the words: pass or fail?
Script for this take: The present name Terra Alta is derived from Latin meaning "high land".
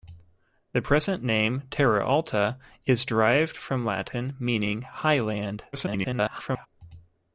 fail